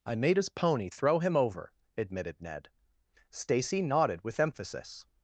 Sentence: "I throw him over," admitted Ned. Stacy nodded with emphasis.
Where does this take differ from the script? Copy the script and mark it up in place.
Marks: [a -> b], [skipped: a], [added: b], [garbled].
"I [added: made his pony] throw him over," admitted Ned. Stacy nodded with emphasis.